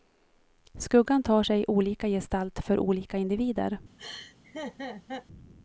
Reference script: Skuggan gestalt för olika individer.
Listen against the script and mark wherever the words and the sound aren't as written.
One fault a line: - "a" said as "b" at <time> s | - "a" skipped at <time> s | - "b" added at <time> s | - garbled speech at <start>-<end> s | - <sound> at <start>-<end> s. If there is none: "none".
- "tar sig olika" added at 1.2 s
- laugh at 4.0-5.3 s